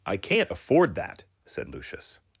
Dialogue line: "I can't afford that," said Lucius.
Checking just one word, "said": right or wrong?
right